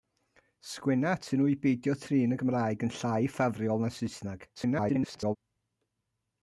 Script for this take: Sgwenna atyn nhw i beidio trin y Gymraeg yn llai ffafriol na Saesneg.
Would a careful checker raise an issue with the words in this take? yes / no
yes